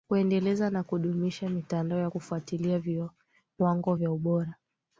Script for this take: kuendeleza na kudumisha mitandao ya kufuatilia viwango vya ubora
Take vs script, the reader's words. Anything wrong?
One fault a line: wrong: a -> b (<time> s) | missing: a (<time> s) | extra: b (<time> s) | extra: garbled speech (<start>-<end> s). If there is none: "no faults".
no faults